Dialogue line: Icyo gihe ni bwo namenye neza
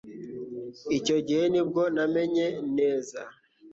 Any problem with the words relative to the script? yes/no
no